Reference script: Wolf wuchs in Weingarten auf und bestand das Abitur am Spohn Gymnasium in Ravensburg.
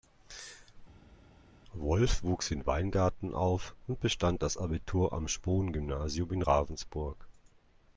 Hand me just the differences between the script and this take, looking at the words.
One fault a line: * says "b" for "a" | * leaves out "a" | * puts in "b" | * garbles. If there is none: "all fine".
all fine